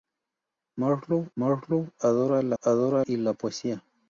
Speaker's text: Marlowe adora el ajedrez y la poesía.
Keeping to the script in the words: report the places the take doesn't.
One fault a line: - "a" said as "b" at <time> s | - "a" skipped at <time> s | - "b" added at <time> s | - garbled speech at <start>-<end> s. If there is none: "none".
- "marlowe" added at 1.4 s
- "ajedrez" said as "adora" at 2.6 s